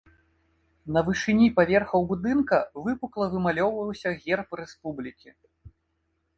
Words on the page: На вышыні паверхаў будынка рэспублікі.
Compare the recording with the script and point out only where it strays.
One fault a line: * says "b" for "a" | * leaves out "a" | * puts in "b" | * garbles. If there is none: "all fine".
* puts in "выпукла вымалёўваўся герб"